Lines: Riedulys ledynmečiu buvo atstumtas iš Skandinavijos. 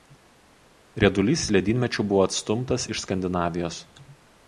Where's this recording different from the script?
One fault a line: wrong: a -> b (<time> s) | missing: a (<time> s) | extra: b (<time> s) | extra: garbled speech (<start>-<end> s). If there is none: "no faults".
no faults